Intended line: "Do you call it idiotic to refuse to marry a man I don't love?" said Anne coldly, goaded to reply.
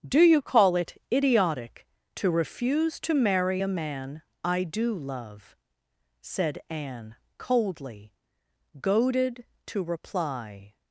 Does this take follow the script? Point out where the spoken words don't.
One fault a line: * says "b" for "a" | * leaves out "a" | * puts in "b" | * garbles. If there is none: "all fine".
* says "do" for "don't"